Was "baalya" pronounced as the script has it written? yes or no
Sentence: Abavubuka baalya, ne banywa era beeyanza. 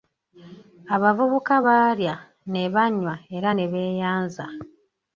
yes